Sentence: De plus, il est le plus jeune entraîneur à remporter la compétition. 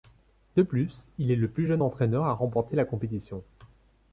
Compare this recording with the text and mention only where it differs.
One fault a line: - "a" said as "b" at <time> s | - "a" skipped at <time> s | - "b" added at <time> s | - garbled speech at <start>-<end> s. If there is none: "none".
none